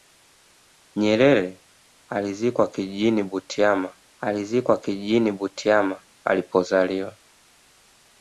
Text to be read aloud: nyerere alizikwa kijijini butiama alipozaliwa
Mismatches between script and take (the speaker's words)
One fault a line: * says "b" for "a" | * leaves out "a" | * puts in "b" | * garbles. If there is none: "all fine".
* puts in "alizikwa kijijini butiama"